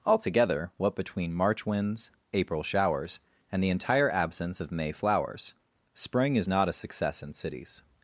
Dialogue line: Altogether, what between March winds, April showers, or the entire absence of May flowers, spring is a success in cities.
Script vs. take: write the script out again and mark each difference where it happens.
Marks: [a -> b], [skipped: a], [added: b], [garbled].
Altogether, what between March winds, April showers, [or -> and] the entire absence of May flowers, spring is [added: not] a success in cities.